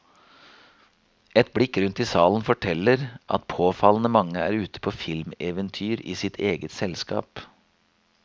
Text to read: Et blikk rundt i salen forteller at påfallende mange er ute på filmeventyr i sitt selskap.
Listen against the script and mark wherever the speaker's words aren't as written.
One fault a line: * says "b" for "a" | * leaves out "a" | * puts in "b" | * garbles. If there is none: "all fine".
* puts in "eget"